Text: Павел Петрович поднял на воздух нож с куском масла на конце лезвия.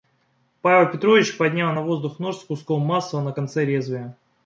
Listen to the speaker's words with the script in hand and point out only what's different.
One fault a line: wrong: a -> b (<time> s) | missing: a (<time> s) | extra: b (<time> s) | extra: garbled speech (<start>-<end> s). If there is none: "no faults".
no faults